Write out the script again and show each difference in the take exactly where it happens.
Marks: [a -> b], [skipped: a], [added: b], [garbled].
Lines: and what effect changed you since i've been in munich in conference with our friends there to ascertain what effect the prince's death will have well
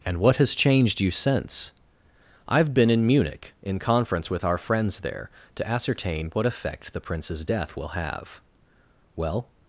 and what [effect -> has] changed you since i've been in munich in conference with our friends there to ascertain what effect the prince's death will have well